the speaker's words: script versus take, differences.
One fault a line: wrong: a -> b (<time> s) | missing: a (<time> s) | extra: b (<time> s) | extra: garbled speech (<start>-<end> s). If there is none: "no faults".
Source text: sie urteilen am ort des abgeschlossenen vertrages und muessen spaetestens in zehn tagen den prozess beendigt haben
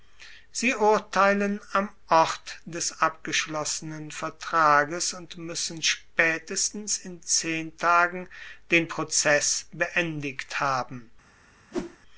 no faults